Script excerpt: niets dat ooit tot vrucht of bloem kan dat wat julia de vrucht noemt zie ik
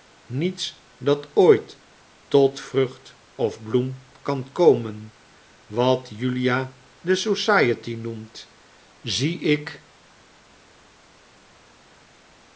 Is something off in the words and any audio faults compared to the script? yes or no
yes